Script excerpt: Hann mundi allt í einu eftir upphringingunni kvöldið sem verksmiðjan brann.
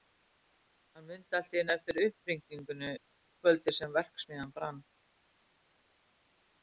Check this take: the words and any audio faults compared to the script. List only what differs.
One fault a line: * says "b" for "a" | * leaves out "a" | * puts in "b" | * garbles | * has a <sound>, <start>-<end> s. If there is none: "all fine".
all fine